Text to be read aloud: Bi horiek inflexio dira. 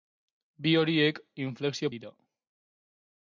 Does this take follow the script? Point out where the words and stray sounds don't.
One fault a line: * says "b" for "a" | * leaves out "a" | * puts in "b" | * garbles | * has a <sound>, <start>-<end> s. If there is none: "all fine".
all fine